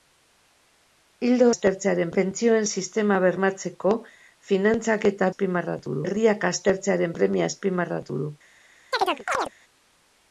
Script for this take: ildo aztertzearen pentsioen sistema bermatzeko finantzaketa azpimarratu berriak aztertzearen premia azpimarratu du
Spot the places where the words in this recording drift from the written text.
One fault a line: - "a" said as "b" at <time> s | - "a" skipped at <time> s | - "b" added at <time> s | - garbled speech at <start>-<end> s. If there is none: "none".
none